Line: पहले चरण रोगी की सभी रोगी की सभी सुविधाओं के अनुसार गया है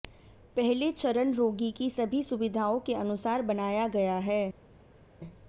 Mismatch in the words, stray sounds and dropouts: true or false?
true